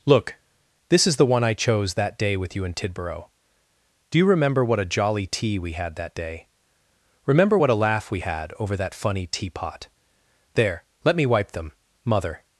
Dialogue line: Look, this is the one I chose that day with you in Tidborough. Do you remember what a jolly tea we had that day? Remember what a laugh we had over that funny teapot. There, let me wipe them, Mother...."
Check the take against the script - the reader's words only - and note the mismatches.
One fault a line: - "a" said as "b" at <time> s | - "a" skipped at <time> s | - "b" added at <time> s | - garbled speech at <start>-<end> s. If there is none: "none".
none